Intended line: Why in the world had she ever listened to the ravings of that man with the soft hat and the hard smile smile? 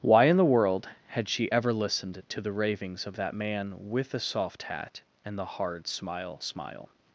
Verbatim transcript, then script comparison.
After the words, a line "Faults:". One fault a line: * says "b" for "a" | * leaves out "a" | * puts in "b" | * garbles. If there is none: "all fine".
Why in the world had she ever listened to the ravings of that man with the soft hat and the hard smile smile?
Faults:
all fine